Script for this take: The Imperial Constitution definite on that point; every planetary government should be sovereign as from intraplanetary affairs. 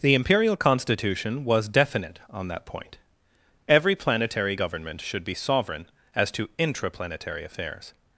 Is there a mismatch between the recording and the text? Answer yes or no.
yes